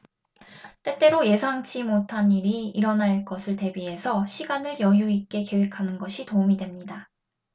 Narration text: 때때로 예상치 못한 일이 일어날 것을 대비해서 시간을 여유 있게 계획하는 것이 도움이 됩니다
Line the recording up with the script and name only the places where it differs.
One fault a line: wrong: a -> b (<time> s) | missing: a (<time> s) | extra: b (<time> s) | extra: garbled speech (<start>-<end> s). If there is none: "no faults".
no faults